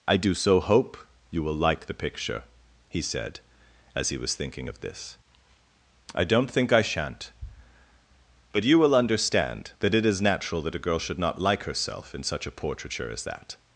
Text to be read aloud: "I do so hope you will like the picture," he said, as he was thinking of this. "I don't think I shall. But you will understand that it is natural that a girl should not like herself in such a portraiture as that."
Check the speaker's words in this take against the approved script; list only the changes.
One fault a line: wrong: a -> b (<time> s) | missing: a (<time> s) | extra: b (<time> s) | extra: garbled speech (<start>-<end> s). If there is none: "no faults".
wrong: shall -> shan't (6.8 s)